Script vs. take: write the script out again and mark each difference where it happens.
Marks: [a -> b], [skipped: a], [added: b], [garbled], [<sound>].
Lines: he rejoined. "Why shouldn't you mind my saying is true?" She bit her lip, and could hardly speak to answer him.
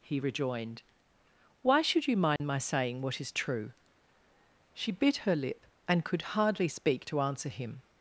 he rejoined. "Why [shouldn't -> should] you mind [dropout] my saying [added: what] is true?" She bit her lip, and could hardly speak to answer him.